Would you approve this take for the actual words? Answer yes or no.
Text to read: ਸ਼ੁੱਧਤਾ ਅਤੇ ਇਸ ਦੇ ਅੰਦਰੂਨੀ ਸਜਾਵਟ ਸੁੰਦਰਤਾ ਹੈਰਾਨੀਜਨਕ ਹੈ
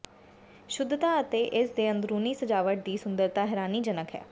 no